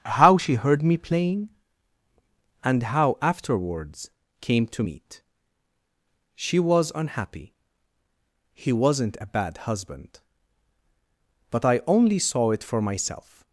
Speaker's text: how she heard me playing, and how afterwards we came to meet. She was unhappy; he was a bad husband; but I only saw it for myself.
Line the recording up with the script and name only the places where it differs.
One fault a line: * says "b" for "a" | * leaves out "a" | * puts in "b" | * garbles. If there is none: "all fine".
* leaves out "we"
* says "wasn't" for "was"